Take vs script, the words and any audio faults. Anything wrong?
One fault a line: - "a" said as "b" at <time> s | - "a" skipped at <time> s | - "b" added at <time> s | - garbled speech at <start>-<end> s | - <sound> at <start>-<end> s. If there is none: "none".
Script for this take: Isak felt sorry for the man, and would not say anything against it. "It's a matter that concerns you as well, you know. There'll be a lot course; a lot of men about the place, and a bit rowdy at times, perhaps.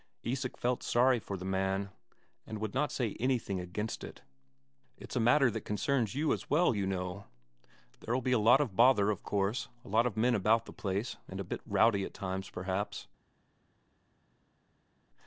- "of bother of" added at 8.6 s